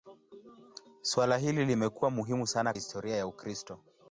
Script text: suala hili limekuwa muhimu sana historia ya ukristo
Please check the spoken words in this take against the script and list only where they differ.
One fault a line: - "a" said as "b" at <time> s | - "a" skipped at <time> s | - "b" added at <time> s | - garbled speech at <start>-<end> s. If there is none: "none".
none